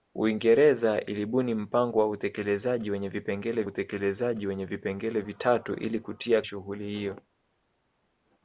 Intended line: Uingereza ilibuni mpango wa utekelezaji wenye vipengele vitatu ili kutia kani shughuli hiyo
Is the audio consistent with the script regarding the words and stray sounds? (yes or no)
no